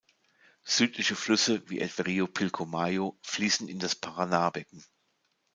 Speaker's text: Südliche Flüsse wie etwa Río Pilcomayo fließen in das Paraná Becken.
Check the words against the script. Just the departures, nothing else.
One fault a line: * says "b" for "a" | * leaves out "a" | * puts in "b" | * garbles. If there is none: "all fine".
all fine